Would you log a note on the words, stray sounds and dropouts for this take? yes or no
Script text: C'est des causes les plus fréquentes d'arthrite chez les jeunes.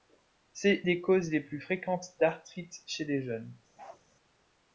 yes